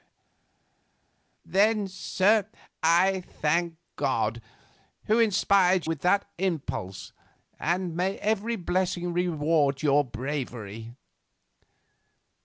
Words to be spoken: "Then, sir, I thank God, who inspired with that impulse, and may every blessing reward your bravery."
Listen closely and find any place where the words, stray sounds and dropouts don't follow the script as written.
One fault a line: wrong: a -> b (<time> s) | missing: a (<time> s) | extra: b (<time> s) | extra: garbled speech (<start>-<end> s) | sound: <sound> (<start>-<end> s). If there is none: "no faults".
no faults